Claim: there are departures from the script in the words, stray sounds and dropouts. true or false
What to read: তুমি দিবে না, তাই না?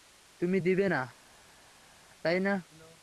false